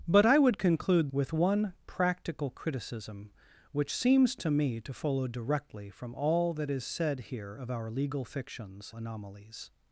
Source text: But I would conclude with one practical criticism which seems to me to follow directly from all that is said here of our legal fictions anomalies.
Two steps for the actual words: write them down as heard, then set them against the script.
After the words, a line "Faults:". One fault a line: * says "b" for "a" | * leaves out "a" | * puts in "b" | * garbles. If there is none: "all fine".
But I would conclude with one practical criticism which seems to me to follow directly from all that is said here of our legal fictions anomalies.
Faults:
all fine